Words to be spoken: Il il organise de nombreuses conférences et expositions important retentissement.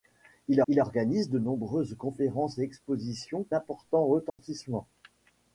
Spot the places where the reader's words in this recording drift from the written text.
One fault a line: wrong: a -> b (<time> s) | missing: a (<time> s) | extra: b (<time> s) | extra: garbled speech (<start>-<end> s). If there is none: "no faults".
no faults